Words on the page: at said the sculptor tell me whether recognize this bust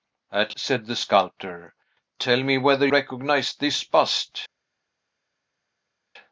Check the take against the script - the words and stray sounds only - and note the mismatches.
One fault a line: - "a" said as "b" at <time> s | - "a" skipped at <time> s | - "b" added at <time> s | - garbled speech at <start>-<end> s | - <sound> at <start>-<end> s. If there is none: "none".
none